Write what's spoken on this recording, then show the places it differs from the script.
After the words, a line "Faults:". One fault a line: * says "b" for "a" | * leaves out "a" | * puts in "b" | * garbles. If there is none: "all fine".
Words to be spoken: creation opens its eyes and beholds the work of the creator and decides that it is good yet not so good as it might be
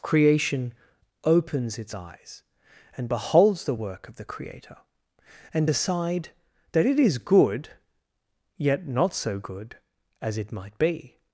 creation opens its eyes and beholds the work of the creator and decide that it is good yet not so good as it might be
Faults:
* says "decide" for "decides"